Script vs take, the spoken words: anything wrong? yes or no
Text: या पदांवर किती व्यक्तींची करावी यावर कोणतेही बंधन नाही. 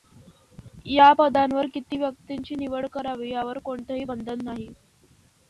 yes